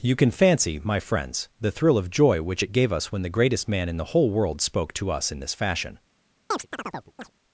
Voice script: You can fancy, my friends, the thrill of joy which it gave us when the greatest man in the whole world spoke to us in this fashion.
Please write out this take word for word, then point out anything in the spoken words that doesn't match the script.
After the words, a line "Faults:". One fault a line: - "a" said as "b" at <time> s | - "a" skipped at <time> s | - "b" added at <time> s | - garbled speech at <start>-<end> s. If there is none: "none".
You can fancy, my friends, the thrill of joy which it gave us when the greatest man in the whole world spoke to us in this fashion.
Faults:
none